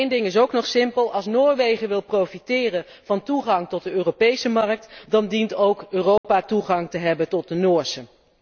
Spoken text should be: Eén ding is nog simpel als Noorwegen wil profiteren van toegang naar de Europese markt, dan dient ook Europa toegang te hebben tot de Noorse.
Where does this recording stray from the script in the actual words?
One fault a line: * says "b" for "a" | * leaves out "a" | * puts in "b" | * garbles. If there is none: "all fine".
* puts in "ook"
* says "tot" for "naar"